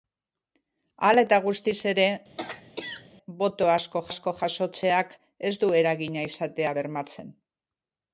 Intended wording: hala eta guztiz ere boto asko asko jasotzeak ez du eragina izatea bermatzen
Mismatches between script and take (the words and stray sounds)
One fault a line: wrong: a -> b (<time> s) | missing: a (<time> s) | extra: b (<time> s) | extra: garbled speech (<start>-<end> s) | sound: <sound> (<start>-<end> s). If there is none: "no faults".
sound: throat clearing (2.4-3.1 s)